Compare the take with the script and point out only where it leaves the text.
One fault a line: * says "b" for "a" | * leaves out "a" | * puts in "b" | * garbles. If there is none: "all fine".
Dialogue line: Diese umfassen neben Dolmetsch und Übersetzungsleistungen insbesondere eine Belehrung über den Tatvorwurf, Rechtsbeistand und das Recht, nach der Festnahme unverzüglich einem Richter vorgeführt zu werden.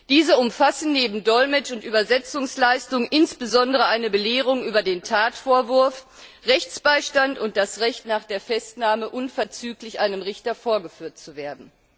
all fine